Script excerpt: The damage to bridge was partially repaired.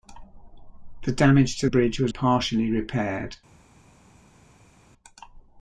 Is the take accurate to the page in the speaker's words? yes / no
yes